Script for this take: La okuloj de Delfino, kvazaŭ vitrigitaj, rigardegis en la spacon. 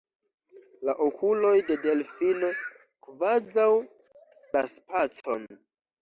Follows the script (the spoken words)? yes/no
no